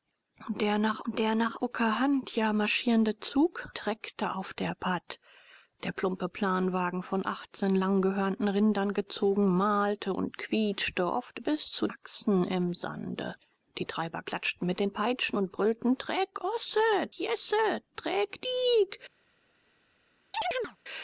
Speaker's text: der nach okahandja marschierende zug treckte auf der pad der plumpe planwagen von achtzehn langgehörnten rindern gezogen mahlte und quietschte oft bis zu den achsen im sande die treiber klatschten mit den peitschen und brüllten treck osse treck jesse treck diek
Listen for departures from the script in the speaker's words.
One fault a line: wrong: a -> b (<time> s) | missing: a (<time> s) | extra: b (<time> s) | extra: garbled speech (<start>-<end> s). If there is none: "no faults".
extra: der nach (1.1 s)
missing: den (11.9 s)
missing: treck (16.8 s)